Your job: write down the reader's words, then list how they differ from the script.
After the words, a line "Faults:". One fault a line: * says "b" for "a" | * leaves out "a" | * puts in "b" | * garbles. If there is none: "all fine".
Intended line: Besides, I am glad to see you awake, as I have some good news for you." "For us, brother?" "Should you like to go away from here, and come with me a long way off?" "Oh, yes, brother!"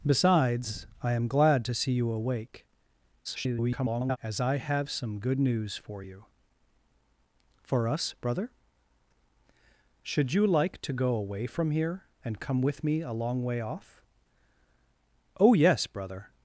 Besides, I am glad to see you awake, [garbled] as I have some good news for you." "For us, brother?" "Should you like to go away from here, and come with me a long way off?" "Oh, yes, brother!"
Faults:
* garbles